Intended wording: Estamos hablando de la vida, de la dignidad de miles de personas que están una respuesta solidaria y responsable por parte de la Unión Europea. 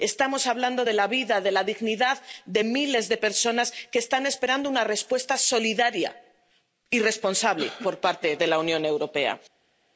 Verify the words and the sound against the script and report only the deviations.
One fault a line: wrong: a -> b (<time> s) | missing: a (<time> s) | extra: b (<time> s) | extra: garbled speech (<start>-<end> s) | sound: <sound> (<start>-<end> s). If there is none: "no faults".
extra: esperando (4.3 s)